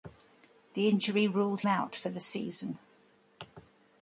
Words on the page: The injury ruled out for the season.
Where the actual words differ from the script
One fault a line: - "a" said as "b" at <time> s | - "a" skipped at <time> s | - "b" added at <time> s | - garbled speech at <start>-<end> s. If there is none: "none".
none